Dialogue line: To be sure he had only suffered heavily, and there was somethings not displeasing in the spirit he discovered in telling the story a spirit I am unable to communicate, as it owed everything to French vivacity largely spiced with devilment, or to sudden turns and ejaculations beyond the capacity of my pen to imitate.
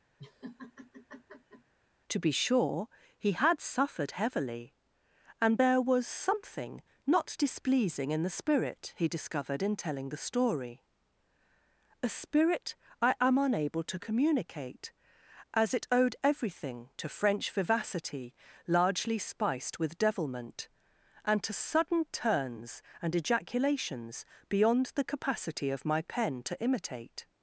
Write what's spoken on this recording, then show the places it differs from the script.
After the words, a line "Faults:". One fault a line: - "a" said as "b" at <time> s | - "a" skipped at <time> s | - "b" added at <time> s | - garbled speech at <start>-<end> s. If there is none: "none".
To be sure he had suffered heavily, and there was something not displeasing in the spirit he discovered in telling the story a spirit I am unable to communicate, as it owed everything to French vivacity largely spiced with devilment, and to sudden turns and ejaculations beyond the capacity of my pen to imitate.
Faults:
- "only" skipped at 3.6 s
- "somethings" said as "something" at 6.1 s
- "or" said as "and" at 21.2 s